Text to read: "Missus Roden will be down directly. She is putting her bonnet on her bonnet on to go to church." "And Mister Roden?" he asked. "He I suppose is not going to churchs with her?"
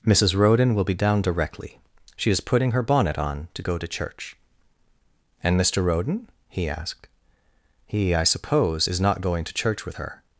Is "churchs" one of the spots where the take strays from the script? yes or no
yes